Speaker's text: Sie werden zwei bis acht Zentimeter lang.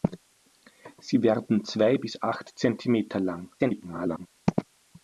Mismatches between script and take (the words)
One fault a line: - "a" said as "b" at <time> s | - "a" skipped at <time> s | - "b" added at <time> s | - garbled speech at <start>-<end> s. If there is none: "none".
- garbled speech at 3.6-4.3 s